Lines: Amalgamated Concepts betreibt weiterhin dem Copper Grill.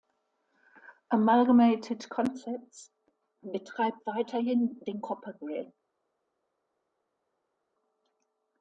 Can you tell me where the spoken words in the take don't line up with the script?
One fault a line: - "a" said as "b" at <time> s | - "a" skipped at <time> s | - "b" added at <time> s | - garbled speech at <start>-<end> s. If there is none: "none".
- "dem" said as "den" at 4.8 s